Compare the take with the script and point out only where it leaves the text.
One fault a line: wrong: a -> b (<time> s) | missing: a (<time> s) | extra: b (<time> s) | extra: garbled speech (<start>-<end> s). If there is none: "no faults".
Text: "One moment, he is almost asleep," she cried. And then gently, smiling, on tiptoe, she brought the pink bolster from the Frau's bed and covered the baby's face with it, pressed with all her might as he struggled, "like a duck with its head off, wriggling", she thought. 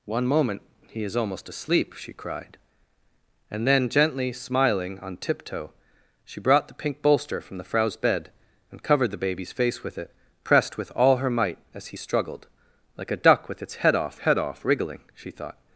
extra: head off (14.2 s)